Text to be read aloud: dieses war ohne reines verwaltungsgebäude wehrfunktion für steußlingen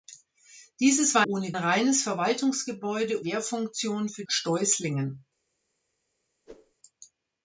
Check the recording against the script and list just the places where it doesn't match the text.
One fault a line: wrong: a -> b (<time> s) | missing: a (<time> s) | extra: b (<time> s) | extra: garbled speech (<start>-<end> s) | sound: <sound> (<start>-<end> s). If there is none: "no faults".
sound: whoosh (6.5-6.7 s)